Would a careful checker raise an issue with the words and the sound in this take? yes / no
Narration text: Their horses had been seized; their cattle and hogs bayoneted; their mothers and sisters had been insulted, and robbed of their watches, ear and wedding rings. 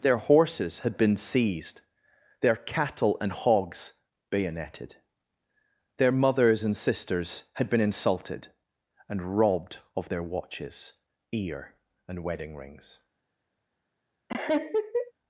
yes